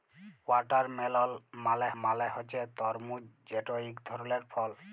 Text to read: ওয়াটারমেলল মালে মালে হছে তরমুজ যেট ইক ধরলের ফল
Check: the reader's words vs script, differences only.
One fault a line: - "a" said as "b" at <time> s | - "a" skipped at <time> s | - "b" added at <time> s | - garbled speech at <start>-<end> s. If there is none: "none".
none